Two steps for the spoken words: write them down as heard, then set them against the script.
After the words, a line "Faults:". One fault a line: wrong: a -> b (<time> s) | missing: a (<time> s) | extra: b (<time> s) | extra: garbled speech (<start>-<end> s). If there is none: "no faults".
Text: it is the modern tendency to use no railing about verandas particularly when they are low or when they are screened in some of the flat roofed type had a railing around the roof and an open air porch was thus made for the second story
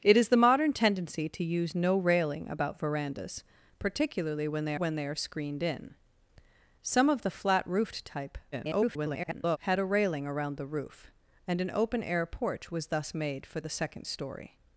it is the modern tendency to use no railing about verandas particularly when they when they are screened in some of the flat roofed type [garbled] had a railing around the roof and an open air porch was thus made for the second story
Faults:
missing: are low or (4.8 s)
extra: garbled speech (8.5-9.6 s)